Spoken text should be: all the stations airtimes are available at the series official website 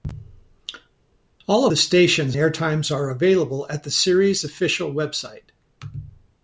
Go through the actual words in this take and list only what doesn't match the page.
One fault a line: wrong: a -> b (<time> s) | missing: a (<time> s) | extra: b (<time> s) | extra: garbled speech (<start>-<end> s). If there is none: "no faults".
no faults